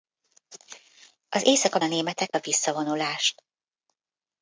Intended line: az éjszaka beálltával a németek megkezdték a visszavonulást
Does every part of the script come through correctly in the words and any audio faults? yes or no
no